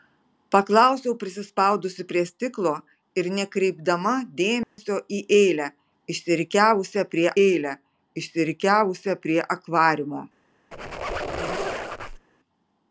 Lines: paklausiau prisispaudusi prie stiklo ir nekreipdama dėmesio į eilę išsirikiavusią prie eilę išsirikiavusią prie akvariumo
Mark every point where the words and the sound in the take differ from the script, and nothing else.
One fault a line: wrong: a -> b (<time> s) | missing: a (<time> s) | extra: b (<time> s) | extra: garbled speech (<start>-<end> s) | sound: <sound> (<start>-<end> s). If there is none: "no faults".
sound: dropout (4.6-4.8 s)
sound: squeak (10.7-12.3 s)